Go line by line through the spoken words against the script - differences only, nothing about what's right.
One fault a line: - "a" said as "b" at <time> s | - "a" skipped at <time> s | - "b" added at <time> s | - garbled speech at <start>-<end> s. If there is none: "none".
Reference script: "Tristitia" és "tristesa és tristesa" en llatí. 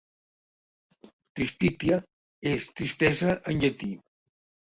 - "és tristesa" skipped at 3.4 s